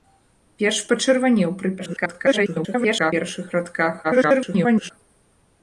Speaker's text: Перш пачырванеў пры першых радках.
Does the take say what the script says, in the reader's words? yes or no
no